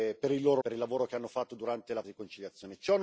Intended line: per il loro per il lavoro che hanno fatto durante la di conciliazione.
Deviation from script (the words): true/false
false